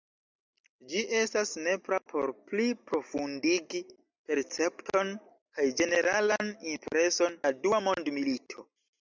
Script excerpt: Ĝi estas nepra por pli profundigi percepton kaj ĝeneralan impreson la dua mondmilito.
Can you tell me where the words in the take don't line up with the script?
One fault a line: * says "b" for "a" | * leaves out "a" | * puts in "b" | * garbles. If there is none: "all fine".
all fine